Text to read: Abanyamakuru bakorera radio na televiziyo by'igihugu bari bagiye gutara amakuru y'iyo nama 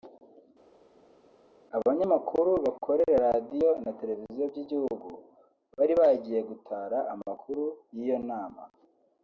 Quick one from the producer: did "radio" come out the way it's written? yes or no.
yes